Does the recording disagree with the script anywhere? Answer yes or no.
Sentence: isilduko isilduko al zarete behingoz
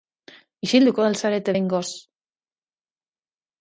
yes